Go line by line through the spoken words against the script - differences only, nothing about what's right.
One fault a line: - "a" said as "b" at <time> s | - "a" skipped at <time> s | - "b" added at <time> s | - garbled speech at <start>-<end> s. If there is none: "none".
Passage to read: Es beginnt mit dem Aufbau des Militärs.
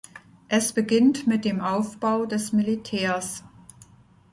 none